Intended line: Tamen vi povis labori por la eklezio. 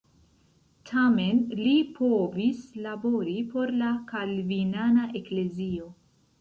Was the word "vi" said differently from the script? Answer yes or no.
yes